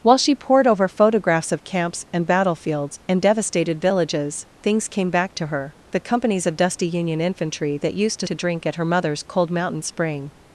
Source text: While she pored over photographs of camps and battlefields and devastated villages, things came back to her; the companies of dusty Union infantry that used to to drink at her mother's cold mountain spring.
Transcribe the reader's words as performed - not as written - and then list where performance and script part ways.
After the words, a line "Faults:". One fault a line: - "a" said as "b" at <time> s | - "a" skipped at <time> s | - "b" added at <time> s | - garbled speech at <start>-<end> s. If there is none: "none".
While she pored over photographs of camps and battlefields and devastated villages, things came back to her; the companies of dusty Union infantry that used to to drink at her mother's cold mountain spring.
Faults:
none